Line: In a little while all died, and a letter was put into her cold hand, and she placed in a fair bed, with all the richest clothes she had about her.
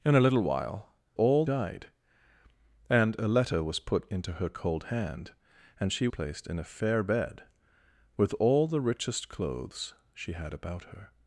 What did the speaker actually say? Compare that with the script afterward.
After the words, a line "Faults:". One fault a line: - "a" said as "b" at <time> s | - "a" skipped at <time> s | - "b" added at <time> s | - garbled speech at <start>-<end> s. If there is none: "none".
In a little while all died, and a letter was put into her cold hand, and she placed in a fair bed, with all the richest clothes she had about her.
Faults:
none